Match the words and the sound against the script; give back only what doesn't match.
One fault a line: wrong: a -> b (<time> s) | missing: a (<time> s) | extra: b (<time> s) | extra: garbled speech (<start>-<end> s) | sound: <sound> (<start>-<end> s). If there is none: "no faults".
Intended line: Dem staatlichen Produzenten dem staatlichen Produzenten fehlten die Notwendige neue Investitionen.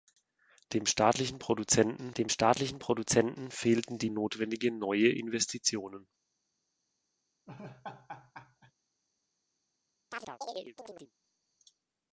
sound: laugh (7.5-8.7 s)
sound: chirp (10.1-11.1 s)